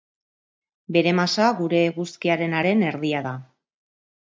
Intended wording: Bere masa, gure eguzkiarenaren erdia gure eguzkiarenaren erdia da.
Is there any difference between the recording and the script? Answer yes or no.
yes